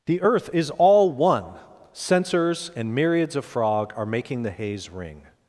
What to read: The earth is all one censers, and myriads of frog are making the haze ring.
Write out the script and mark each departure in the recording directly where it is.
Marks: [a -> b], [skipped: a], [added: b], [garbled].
The earth is all one censers, and myriads of frog are making the haze ring.